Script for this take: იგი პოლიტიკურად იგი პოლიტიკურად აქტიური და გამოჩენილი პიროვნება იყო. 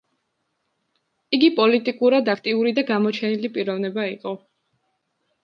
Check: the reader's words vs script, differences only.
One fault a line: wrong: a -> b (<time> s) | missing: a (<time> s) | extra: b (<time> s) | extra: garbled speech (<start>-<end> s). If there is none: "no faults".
missing: იგი პოლიტიკურად (2.3 s)